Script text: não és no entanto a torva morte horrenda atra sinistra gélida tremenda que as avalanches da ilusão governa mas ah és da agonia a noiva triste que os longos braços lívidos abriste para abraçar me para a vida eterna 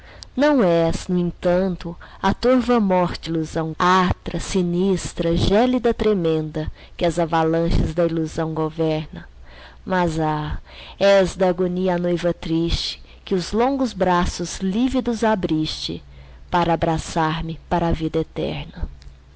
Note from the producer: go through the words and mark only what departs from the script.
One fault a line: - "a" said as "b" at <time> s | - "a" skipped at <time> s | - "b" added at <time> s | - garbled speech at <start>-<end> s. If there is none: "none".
- "horrenda" said as "ilusão" at 3.2 s